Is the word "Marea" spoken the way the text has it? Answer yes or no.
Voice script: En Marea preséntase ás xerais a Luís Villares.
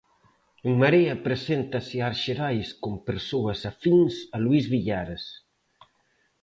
yes